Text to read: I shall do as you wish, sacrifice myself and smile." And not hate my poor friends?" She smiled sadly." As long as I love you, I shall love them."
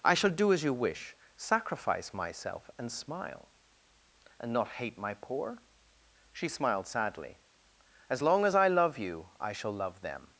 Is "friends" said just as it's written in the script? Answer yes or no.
no